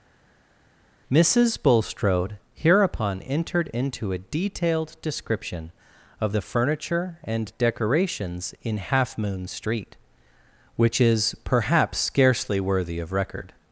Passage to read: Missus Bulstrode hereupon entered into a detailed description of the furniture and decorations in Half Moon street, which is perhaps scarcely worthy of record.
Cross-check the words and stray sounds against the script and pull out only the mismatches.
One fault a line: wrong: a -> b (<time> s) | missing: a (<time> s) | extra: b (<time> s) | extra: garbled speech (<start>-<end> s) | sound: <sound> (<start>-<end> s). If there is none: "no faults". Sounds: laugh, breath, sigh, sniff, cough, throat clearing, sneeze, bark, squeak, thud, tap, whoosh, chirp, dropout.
no faults